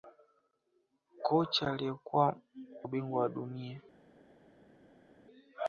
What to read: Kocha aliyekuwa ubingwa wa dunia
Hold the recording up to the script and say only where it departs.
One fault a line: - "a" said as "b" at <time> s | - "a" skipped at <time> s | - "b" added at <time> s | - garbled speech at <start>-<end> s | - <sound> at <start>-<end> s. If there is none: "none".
none